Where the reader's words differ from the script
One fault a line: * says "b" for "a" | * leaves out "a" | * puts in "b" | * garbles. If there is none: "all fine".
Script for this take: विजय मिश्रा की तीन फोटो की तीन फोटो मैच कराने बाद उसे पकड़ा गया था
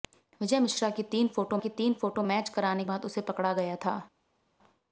all fine